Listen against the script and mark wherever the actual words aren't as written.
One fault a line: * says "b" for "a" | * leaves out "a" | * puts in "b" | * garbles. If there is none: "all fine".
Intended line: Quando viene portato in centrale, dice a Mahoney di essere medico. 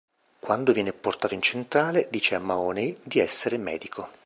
all fine